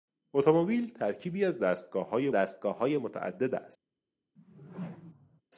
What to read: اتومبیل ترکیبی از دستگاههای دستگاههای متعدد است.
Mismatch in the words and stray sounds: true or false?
true